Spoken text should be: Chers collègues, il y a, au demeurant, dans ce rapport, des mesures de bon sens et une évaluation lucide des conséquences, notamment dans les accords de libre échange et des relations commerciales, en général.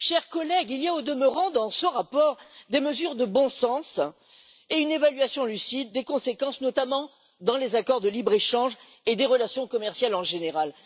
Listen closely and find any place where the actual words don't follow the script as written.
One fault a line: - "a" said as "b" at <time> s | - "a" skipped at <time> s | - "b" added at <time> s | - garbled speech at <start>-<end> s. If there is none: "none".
none